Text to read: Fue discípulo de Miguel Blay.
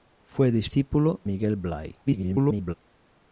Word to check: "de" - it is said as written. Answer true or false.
false